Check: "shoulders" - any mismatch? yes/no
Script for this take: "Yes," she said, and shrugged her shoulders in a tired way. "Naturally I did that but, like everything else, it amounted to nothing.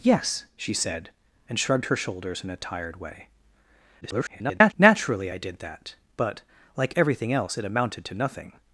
no